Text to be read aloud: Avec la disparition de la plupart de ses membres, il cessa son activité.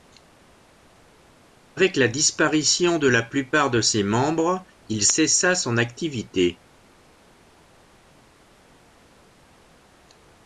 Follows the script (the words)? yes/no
yes